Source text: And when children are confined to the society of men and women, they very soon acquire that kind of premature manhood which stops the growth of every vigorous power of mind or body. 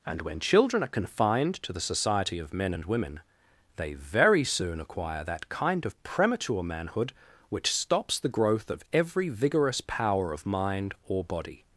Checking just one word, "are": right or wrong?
right